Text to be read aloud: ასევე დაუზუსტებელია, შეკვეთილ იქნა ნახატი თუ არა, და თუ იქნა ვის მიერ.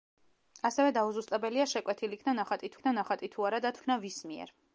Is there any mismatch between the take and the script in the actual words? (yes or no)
yes